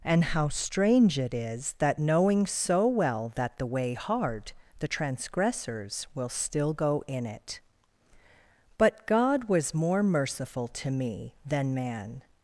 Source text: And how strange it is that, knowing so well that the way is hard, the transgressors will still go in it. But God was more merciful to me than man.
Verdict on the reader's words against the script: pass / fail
fail